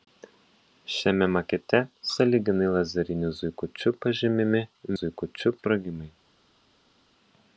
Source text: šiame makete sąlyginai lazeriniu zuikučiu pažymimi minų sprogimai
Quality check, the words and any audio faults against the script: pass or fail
fail